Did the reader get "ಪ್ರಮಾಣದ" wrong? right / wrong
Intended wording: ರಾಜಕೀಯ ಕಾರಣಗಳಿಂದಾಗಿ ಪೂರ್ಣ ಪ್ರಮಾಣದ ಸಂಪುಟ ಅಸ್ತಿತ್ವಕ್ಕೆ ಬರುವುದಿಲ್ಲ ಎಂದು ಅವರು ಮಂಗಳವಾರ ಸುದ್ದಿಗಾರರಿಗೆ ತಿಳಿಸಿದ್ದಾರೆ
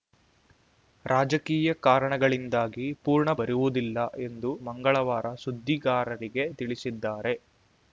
wrong